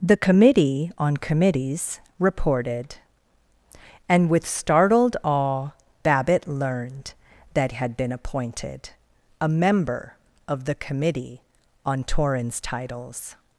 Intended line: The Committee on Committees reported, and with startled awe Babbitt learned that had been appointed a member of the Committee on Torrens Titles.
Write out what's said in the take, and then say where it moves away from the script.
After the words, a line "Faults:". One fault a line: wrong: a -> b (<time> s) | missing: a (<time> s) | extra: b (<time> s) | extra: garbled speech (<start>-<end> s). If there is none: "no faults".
The Committee on Committees reported, and with startled awe Babbitt learned that had been appointed a member of the Committee on Torrens Titles.
Faults:
no faults